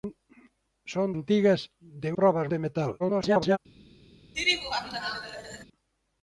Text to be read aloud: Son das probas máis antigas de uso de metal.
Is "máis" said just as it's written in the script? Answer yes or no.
no